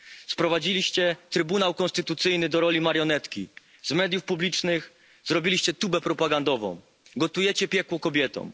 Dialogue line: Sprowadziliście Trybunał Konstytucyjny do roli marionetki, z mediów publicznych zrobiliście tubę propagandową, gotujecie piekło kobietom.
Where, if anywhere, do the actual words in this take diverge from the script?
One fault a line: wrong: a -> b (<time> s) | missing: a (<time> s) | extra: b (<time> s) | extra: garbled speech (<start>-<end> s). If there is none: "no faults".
no faults